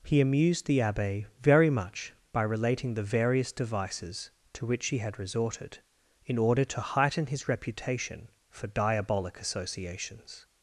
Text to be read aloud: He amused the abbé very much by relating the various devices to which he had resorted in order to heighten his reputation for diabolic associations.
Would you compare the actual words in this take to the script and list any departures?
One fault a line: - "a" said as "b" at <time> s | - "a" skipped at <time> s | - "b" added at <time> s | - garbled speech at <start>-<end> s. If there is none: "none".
none